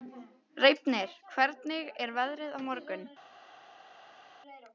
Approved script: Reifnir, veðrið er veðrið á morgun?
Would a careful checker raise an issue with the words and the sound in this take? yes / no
yes